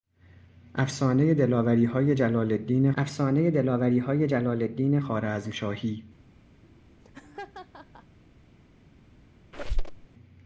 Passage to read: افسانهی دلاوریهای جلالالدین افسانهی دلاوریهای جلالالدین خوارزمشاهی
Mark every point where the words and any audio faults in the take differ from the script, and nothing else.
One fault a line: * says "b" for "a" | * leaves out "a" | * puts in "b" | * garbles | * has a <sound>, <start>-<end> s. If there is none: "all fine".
* has a laugh, 6.6-8.2 s
* has a squeak, 9.5-10.1 s